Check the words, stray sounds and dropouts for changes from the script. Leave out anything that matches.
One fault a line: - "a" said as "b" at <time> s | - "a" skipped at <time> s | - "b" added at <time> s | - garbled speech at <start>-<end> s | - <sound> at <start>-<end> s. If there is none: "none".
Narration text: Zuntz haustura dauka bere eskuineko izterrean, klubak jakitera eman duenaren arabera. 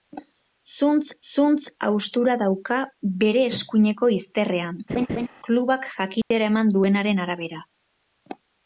- "zuntz" added at 1.3 s
- laugh at 4.9-5.3 s
- dropout at 6.2-6.3 s